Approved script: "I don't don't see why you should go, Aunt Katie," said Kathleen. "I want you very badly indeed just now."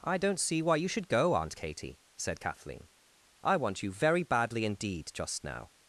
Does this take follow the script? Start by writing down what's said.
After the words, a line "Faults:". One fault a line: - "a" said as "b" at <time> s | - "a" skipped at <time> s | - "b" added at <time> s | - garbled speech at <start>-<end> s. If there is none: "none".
"I don't see why you should go, Aunt Katie," said Kathleen. "I want you very badly indeed just now."
Faults:
- "don't" skipped at 0.4 s